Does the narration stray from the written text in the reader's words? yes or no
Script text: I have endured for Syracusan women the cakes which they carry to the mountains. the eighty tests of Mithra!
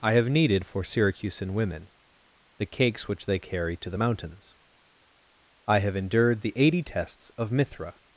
yes